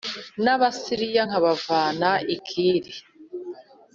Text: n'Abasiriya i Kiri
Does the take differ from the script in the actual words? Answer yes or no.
yes